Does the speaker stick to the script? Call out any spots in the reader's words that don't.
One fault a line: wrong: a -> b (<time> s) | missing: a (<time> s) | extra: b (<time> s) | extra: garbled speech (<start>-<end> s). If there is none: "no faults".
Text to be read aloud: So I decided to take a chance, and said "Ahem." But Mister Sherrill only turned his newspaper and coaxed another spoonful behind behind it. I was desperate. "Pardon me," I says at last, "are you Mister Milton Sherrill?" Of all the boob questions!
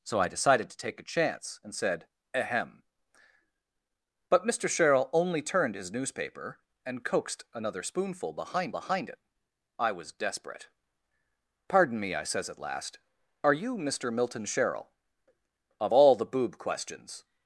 no faults